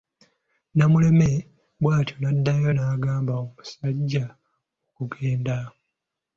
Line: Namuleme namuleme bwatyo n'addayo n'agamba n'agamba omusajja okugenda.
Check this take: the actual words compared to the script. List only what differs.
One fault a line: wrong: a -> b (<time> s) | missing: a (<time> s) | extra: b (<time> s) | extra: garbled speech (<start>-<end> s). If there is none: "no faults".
missing: namuleme (1.3 s)
missing: n'agamba (3.3 s)